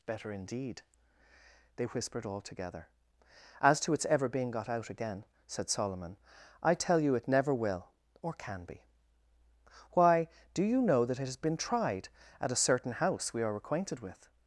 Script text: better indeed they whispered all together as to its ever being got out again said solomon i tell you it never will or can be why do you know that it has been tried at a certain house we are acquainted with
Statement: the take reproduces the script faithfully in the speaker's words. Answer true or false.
true